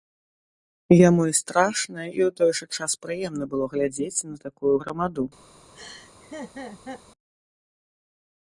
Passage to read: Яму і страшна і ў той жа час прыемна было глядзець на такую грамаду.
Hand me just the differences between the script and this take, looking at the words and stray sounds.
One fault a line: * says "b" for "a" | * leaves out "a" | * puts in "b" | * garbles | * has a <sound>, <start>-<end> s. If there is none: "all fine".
* has a laugh, 5.7-7.0 s